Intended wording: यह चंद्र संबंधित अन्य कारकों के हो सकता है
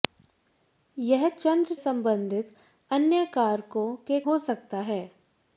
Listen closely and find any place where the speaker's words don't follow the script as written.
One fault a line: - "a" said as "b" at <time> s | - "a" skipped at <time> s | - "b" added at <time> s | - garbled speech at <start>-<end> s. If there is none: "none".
none